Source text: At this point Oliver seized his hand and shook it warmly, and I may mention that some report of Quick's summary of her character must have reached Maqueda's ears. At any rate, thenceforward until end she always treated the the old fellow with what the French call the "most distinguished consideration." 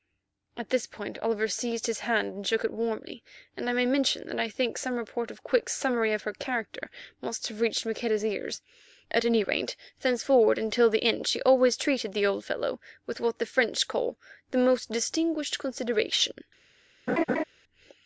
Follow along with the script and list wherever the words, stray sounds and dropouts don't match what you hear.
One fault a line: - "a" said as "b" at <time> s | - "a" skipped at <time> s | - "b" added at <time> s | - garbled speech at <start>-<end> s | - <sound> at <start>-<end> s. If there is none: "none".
- "I think" added at 4.4 s
- "the" added at 10.9 s
- "the" skipped at 12.3 s
- laugh at 17.1-17.4 s